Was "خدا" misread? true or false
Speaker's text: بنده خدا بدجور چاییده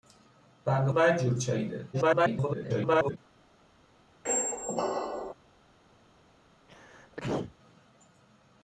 true